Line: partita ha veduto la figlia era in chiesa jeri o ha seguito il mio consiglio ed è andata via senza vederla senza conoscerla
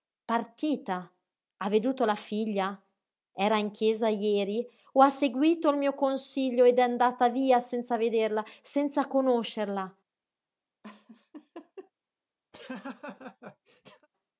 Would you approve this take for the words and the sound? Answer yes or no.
no